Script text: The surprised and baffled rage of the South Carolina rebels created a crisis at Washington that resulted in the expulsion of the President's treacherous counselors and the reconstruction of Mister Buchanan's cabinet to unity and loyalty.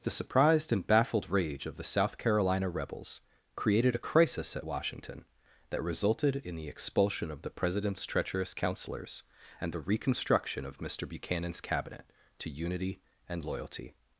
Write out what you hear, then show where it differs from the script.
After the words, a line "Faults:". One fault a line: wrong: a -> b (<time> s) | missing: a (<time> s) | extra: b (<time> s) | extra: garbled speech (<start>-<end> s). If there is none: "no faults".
The surprised and baffled rage of the South Carolina rebels created a crisis at Washington that resulted in the expulsion of the President's treacherous counselors and the reconstruction of Mister Buchanan's cabinet to unity and loyalty.
Faults:
no faults